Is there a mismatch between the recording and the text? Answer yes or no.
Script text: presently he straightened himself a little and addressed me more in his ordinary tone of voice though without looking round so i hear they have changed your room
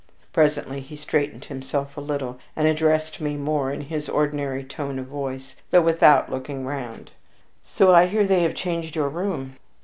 no